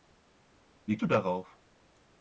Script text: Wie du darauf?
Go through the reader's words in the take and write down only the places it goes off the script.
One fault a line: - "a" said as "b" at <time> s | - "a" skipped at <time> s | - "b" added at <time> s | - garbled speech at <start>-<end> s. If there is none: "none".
none